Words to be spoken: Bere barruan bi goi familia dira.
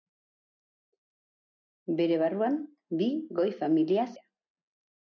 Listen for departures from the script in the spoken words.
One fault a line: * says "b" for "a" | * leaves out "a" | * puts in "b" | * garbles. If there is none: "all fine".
all fine